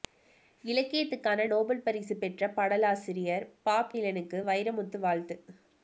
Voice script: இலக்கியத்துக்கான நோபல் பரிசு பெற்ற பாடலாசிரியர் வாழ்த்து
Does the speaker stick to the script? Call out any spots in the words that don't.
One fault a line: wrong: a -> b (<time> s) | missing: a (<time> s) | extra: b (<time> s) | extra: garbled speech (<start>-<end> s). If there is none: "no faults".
extra: பாப் டிலனுக்கு வைரமுத்து (3.6 s)